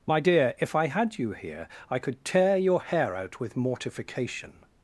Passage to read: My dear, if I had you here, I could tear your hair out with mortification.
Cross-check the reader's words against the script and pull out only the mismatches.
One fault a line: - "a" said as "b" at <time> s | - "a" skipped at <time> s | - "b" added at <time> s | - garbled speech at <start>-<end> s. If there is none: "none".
none